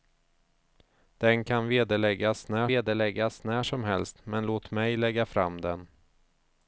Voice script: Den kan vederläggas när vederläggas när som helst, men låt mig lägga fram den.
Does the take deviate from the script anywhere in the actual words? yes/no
no